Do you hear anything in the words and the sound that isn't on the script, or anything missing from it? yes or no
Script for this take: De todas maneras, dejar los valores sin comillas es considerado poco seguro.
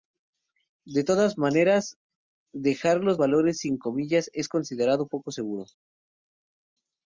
no